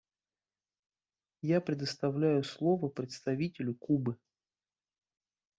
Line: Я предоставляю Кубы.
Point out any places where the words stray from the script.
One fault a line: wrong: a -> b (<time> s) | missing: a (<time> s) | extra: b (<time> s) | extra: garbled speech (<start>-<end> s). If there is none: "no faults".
extra: слово представителю (2.4 s)